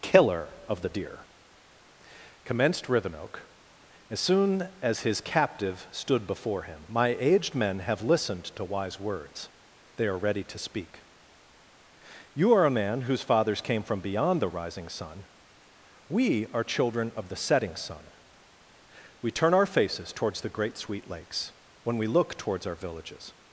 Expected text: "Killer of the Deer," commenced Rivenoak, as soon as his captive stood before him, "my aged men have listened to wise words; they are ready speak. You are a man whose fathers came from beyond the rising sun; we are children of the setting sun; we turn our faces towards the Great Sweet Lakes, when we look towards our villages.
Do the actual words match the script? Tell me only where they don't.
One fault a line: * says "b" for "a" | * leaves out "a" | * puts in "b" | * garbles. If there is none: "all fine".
* puts in "to"